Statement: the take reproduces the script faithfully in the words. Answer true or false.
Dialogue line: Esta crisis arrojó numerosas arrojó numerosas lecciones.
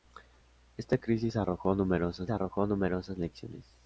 true